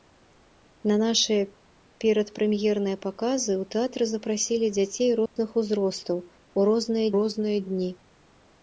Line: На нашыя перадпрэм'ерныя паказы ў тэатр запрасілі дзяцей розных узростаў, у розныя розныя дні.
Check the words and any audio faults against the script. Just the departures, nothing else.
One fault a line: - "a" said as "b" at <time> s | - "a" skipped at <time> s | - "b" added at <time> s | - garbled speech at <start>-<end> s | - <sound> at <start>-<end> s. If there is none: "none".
- dropout at 5.3-5.4 s